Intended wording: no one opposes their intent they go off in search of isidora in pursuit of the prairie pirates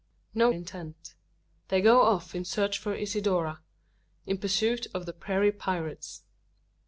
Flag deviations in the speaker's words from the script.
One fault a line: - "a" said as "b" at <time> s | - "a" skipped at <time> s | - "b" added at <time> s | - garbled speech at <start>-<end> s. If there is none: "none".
- "one opposes their" skipped at 0.5 s